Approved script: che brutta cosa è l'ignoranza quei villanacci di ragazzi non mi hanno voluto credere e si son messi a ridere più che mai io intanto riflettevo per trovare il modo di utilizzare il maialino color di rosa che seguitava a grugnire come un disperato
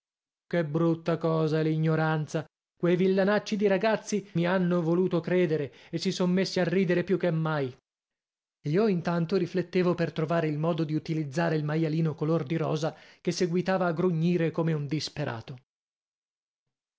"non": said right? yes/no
no